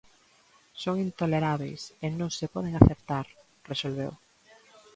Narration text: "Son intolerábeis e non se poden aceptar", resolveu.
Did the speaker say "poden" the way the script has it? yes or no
yes